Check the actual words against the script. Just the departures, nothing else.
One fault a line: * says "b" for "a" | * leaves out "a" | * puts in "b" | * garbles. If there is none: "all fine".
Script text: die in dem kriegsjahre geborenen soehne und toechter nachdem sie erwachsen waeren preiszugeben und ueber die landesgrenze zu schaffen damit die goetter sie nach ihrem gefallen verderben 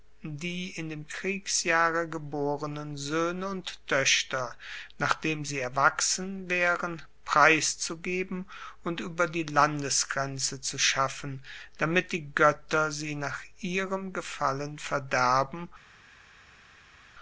all fine